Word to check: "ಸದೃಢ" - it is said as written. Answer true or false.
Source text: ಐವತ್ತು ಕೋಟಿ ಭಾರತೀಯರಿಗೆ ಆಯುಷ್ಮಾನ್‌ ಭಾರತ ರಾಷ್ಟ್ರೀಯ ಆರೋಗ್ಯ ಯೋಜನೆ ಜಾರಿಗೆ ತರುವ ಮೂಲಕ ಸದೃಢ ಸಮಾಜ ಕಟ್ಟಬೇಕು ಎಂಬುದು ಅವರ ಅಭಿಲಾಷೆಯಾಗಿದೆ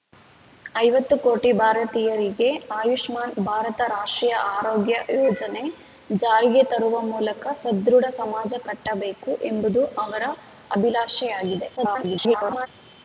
true